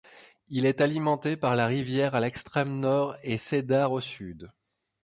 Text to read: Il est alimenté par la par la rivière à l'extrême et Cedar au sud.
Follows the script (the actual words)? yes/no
no